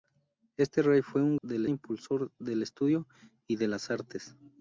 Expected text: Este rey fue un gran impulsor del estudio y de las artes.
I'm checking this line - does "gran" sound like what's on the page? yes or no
no